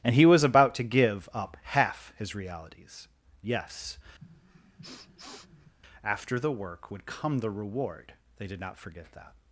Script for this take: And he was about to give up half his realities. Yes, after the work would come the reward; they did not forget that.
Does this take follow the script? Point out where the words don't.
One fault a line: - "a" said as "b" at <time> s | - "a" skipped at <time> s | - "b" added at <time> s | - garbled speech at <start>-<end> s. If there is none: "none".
none